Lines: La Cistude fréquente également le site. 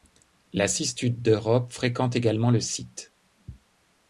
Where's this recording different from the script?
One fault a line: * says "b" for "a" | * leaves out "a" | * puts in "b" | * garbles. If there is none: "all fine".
* puts in "d'Europe"